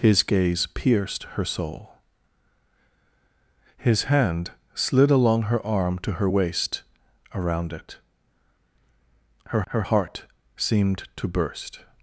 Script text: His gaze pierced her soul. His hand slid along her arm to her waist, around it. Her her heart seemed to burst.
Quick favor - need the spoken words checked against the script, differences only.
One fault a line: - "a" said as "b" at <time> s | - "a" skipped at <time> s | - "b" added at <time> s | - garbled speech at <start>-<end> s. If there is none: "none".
none